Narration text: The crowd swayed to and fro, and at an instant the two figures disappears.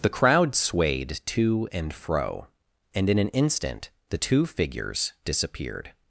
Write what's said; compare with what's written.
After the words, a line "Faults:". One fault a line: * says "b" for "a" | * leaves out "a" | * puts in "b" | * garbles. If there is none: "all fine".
The crowd swayed to and fro, and in an instant the two figures disappeared.
Faults:
* says "in" for "at"
* says "disappeared" for "disappears"